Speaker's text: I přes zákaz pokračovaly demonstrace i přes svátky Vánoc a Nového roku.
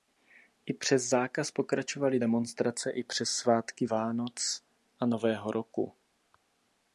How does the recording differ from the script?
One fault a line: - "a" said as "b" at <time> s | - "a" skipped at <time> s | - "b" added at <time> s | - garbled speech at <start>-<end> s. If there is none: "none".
none